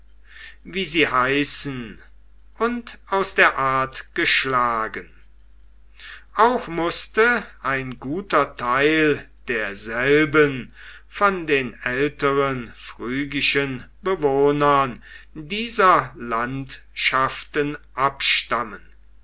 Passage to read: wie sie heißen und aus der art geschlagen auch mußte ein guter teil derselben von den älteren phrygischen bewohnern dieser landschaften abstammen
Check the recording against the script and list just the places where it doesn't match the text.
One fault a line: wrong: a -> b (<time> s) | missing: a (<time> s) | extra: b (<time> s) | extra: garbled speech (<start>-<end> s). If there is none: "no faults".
no faults